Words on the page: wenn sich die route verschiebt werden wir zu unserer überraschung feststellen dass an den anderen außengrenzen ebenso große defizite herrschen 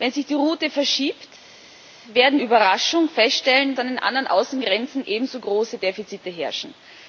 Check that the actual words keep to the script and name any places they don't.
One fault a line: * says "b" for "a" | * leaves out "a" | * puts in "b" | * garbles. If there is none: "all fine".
* leaves out "wir zu unserer"
* leaves out "dass"